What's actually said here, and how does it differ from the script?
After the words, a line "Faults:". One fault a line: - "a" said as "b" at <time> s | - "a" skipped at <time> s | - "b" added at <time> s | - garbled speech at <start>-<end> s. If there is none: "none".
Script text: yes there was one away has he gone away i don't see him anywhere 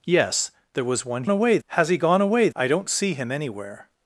yes there was one away has he gone away i don't see him anywhere
Faults:
none